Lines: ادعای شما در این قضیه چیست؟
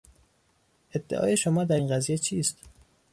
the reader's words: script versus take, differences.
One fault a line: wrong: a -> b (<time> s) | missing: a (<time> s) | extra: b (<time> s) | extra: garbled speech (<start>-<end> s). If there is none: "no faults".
no faults